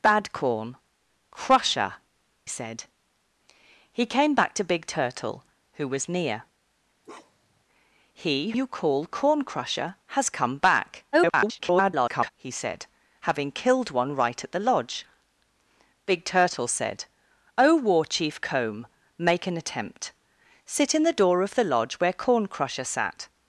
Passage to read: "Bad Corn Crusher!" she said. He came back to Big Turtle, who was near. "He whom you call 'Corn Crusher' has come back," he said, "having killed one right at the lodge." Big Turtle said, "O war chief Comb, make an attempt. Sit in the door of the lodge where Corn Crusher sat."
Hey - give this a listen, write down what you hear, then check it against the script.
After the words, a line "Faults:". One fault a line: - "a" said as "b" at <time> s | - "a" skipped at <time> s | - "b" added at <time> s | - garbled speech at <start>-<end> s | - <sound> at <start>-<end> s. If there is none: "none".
"Bad Corn Crusher!" said. He came back to Big Turtle, who was near. "He you call 'Corn Crusher' has come back," [garbled] he said, "having killed one right at the lodge." Big Turtle said, "O war chief Comb, make an attempt. Sit in the door of the lodge where Corn Crusher sat."
Faults:
- "she" skipped at 2.0 s
- bark at 7.0-7.6 s
- "whom" skipped at 8.5 s
- garbled speech at 11.1-12.3 s